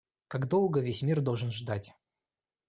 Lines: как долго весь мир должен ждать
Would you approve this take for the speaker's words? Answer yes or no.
yes